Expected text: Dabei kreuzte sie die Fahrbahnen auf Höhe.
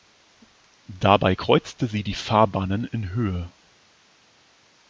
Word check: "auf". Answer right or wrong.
wrong